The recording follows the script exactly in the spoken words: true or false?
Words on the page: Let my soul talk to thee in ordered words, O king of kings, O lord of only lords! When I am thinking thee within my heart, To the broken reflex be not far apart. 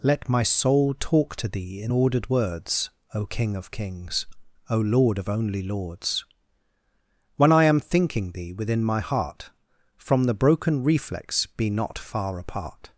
false